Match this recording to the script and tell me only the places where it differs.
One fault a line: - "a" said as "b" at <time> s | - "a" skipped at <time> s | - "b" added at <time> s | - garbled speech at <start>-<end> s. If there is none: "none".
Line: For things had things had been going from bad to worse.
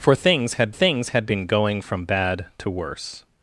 none